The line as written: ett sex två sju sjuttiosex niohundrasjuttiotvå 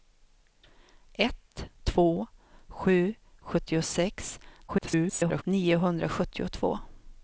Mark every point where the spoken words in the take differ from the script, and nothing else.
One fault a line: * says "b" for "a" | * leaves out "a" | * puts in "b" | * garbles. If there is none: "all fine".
* leaves out "sex"
* garbles